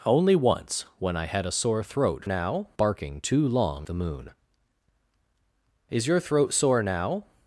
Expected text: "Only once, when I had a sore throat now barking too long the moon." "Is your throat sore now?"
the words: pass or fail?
pass